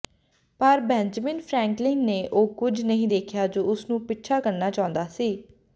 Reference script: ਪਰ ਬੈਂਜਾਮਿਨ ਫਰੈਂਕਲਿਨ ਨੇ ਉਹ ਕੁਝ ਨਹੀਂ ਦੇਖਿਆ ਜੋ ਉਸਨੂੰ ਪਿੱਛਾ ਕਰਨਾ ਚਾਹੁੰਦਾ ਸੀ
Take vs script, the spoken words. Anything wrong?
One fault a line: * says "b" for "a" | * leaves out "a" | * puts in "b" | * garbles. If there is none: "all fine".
all fine